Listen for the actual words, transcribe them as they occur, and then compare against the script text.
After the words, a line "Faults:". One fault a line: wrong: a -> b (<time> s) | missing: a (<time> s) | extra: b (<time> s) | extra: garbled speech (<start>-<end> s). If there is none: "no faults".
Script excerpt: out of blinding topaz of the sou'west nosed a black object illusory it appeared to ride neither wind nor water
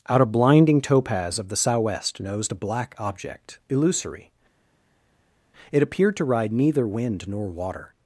out of blinding topaz of the sou'west nosed a black object illusory it appeared to ride neither wind nor water
Faults:
no faults